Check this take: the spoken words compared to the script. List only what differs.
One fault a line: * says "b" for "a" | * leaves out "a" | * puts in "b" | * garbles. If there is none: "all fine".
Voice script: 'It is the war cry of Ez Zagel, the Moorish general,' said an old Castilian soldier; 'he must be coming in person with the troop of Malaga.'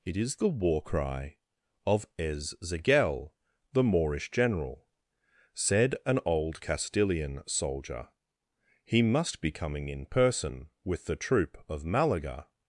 all fine